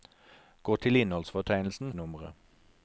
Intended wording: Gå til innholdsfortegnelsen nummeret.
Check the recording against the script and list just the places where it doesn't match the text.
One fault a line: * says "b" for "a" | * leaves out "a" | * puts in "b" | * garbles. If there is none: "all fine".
all fine